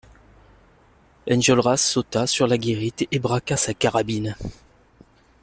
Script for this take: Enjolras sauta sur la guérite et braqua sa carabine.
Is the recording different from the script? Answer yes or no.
no